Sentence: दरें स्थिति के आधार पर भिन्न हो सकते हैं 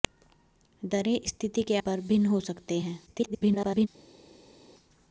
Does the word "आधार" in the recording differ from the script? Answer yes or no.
yes